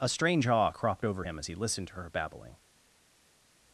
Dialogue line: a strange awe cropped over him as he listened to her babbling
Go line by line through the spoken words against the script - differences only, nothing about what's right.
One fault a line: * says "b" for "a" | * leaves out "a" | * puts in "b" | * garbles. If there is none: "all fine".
all fine